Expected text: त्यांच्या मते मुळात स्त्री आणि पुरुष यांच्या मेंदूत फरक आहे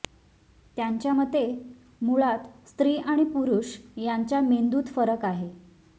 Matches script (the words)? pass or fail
pass